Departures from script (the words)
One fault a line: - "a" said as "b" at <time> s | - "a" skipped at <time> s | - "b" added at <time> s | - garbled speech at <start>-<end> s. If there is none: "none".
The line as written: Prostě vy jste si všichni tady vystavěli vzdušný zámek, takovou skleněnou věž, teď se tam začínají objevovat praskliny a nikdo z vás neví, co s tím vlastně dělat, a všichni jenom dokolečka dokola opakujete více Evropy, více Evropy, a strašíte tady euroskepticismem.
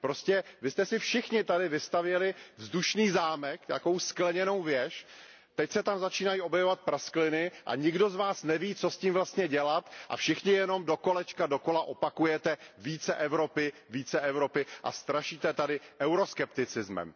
none